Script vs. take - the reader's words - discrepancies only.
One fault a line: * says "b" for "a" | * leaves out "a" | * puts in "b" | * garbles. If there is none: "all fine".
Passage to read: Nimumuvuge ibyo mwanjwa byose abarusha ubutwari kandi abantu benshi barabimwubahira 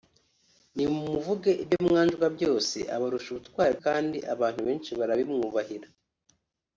all fine